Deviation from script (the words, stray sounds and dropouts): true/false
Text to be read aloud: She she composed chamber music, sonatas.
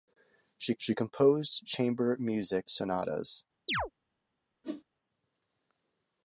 true